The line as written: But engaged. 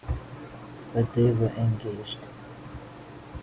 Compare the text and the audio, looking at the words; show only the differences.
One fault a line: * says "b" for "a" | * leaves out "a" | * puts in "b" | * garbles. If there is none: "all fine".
* puts in "they were"